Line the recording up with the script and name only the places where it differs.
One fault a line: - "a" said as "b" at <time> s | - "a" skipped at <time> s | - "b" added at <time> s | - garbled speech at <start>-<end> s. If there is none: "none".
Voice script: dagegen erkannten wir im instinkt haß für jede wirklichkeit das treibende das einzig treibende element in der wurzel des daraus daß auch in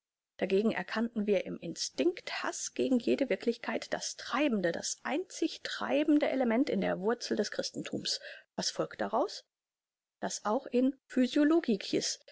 - "für" said as "gegen" at 2.7 s
- "christenthums was folgt" added at 7.5 s